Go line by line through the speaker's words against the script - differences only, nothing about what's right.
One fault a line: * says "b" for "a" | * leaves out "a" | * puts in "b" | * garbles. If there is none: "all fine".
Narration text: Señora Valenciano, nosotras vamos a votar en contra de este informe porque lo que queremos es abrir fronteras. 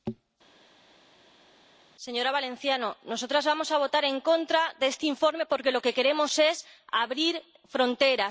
all fine